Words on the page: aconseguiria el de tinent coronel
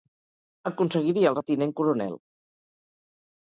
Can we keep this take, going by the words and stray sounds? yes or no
yes